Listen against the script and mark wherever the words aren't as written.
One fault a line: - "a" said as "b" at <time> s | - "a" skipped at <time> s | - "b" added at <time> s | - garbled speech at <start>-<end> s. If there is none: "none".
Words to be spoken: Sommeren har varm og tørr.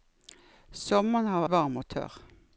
none